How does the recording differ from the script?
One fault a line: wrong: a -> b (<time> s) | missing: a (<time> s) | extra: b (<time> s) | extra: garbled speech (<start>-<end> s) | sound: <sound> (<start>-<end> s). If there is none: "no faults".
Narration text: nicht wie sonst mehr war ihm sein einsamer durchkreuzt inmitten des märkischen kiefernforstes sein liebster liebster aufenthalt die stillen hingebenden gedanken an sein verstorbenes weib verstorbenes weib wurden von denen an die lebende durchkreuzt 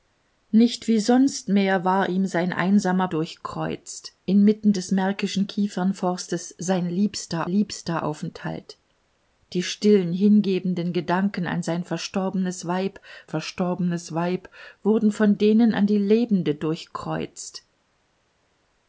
no faults